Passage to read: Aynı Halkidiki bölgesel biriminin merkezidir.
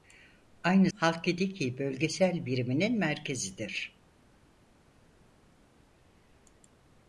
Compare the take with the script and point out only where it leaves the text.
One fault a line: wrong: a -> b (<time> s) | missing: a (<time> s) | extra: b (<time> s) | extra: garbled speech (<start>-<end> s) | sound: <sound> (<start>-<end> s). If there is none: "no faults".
no faults